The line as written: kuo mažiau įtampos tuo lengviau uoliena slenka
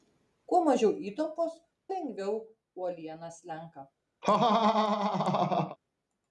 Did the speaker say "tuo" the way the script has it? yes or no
no